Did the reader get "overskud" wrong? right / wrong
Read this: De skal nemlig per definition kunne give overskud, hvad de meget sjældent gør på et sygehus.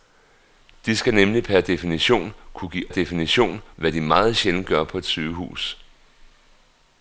wrong